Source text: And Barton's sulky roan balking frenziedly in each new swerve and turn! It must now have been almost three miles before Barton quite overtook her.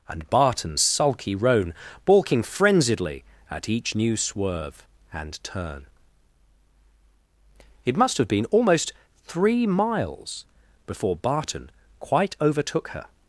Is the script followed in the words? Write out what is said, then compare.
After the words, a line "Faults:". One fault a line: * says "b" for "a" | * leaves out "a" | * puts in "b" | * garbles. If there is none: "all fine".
And Barton's sulky roan balking frenziedly at each new swerve and turn! It must have been almost three miles before Barton quite overtook her.
Faults:
* says "at" for "in"
* leaves out "now"